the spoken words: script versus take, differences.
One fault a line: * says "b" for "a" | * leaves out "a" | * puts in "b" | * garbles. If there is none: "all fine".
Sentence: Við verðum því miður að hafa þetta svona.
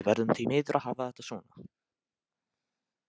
all fine